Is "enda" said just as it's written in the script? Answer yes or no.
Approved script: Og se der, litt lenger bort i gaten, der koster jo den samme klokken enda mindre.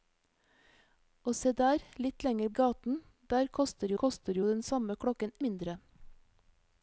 no